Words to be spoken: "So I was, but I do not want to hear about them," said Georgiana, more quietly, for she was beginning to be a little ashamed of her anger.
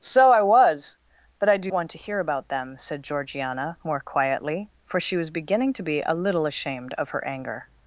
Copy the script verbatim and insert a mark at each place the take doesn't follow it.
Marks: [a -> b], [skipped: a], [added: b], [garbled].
"So I was, but I do [skipped: not] want to hear about them," said Georgiana, more quietly, for she was beginning to be a little ashamed of her anger.